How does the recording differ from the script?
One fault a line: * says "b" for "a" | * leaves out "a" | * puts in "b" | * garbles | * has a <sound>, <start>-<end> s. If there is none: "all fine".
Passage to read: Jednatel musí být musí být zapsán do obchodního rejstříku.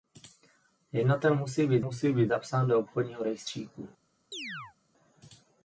* has a chirp, 4.3-4.8 s